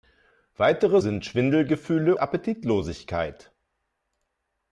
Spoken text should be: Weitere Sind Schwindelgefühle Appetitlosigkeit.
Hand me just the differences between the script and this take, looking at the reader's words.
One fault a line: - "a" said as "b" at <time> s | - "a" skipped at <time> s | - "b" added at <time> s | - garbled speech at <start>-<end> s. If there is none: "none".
none